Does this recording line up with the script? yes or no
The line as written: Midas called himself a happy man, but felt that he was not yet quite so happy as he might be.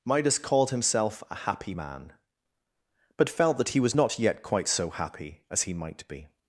yes